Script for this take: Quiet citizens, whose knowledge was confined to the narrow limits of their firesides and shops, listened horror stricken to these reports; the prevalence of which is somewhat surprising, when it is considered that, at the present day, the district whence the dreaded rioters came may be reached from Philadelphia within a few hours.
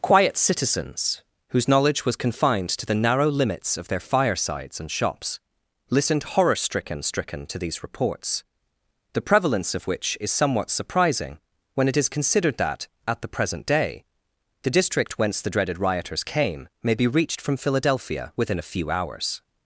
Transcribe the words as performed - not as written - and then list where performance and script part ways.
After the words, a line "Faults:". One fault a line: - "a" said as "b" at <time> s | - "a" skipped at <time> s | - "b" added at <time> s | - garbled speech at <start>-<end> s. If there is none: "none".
Quiet citizens, whose knowledge was confined to the narrow limits of their firesides and shops, listened horror stricken stricken to these reports; the prevalence of which is somewhat surprising, when it is considered that, at the present day, the district whence the dreaded rioters came may be reached from Philadelphia within a few hours.
Faults:
- "stricken" added at 7.0 s